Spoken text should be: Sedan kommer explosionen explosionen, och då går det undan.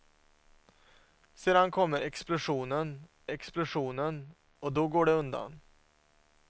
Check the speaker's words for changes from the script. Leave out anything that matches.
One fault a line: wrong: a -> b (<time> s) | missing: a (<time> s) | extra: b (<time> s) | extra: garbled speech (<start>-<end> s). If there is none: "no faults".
no faults